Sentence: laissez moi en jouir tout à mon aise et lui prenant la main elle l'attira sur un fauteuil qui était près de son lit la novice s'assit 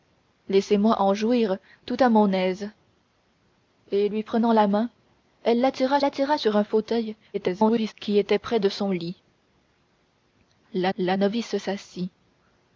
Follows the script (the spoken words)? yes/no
no